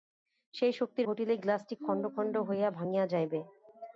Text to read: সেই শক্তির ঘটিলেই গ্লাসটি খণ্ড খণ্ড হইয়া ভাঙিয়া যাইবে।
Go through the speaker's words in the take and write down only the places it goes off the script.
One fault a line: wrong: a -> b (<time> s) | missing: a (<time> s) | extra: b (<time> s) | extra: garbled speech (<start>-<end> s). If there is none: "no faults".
no faults